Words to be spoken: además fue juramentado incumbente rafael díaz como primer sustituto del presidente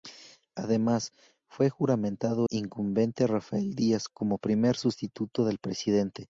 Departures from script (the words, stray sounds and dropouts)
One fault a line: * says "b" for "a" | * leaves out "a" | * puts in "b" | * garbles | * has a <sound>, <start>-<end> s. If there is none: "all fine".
all fine